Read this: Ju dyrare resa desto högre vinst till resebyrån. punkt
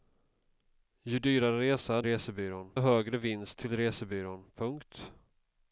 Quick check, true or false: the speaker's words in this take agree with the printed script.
false